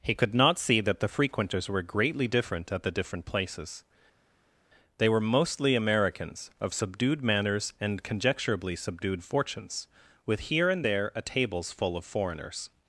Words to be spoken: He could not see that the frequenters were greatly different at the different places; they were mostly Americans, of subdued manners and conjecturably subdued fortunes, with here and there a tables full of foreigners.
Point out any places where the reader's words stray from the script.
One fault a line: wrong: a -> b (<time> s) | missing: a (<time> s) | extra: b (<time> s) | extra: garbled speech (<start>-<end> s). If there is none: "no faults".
no faults